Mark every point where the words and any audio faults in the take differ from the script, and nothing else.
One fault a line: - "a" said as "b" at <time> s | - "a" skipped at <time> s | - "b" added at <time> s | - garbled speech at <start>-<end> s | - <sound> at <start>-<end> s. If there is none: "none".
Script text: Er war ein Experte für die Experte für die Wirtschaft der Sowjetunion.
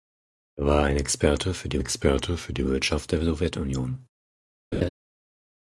- laugh at 4.7-4.9 s